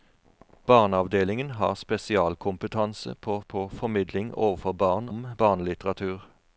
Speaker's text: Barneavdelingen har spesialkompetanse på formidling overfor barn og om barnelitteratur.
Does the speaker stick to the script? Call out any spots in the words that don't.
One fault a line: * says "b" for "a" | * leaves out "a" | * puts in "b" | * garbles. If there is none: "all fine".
* puts in "på"
* leaves out "og"